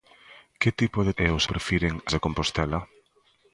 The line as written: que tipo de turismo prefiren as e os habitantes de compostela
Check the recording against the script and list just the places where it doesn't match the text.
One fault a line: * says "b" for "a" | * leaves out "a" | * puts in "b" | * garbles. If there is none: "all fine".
* leaves out "turismo prefiren as"
* says "prefiren" for "habitantes"